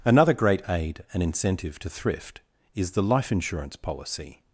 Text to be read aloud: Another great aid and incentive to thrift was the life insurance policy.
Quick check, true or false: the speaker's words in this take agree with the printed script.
false